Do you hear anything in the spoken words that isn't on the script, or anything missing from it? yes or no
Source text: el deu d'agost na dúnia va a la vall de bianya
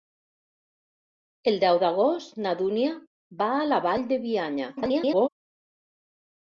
yes